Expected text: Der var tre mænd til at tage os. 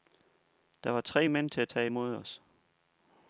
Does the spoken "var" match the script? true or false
true